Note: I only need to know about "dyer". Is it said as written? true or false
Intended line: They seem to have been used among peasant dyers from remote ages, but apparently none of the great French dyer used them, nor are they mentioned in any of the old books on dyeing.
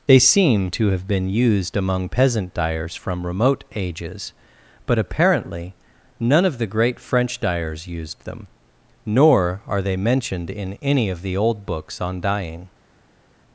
false